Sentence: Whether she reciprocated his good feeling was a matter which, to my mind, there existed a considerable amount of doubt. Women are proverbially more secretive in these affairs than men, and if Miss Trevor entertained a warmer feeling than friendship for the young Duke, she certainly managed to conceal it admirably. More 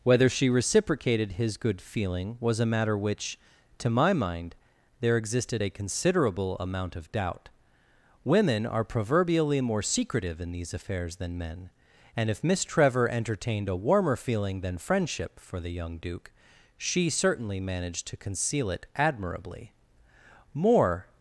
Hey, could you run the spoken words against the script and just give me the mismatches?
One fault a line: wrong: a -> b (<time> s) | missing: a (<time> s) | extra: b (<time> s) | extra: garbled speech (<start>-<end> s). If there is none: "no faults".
no faults